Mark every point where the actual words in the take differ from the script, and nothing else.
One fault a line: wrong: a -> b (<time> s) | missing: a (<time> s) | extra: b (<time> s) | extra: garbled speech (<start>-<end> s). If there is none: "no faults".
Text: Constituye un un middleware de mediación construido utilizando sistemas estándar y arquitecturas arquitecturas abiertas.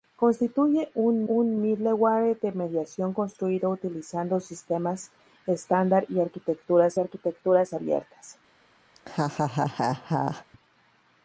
no faults